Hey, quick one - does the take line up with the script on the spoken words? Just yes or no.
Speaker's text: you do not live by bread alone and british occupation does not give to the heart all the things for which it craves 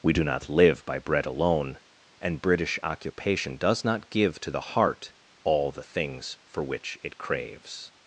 no